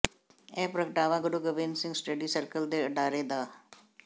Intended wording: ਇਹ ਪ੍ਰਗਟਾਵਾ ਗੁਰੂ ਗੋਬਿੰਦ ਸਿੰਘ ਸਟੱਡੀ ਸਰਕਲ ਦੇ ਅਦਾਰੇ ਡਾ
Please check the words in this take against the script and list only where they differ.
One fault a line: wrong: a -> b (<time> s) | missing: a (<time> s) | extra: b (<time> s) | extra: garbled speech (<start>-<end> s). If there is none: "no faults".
no faults